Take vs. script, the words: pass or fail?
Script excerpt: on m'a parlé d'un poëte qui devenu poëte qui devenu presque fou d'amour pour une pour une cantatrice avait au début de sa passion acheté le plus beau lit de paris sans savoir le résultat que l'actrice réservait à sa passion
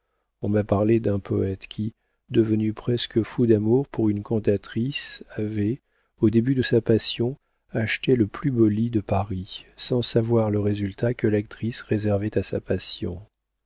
fail